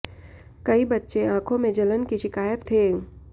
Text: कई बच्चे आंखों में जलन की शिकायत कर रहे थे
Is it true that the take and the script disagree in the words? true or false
true